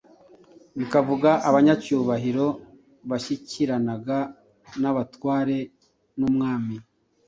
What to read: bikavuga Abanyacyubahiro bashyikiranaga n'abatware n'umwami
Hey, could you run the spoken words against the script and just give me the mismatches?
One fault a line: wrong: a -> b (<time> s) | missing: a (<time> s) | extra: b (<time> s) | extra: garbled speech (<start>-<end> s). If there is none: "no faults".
no faults